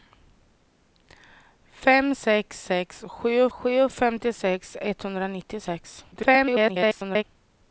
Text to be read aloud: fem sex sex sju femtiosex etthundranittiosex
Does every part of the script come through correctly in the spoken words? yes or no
no